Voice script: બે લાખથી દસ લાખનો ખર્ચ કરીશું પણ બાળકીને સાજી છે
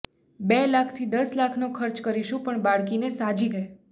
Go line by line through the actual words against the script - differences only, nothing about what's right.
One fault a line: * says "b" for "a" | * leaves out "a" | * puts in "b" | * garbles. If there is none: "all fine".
all fine